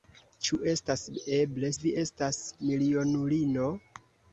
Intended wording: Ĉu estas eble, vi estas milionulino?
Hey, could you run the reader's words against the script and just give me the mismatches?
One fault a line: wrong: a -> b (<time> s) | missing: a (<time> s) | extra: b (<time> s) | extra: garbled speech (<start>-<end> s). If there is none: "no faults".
no faults